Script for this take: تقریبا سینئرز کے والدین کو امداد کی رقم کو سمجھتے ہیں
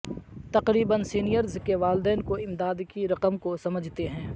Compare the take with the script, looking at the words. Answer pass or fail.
pass